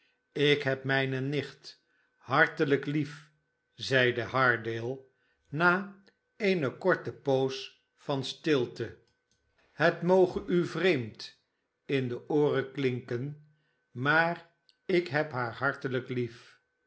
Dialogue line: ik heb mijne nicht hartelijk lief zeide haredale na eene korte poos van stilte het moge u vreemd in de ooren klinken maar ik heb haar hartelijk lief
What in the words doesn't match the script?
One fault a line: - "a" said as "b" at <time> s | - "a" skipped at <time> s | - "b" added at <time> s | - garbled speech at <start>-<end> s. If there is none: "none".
none